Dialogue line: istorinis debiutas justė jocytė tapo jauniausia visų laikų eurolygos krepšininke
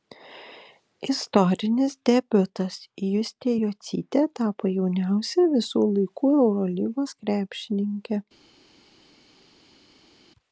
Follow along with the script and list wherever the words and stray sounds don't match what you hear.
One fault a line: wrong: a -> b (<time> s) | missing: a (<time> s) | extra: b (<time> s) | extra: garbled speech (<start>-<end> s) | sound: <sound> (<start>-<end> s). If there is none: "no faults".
no faults